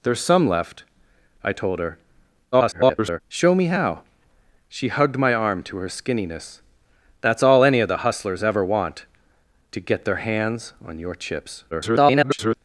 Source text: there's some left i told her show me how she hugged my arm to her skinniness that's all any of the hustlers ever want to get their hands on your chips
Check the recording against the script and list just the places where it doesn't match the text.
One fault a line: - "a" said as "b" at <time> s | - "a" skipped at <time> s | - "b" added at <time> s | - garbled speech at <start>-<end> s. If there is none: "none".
- garbled speech at 2.5-3.2 s
- garbled speech at 11.7-12.6 s